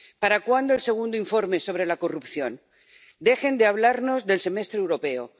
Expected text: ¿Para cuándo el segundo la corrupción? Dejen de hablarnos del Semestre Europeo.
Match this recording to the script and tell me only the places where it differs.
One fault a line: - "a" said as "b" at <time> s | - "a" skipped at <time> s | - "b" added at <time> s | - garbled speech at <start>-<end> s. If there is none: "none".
- "informe sobre" added at 1.2 s